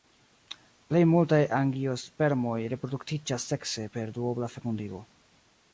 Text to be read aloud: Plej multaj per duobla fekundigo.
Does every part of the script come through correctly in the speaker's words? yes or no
no